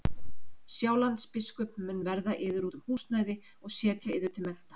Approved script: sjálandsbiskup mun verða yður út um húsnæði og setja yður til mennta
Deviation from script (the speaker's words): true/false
false